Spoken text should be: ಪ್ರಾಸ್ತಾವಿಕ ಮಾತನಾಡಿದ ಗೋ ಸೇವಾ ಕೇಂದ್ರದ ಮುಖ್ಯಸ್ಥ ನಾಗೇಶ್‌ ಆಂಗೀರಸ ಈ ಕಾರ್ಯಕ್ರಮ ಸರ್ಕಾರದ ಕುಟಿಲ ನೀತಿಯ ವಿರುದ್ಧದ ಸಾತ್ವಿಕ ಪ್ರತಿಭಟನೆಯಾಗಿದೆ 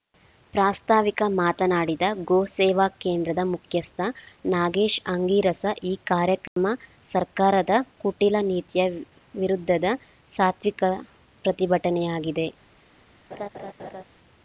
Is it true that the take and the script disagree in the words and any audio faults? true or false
true